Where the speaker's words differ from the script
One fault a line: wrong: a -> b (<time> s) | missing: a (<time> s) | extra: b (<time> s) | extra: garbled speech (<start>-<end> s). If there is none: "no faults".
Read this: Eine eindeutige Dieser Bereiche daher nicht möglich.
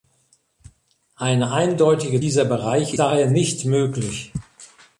no faults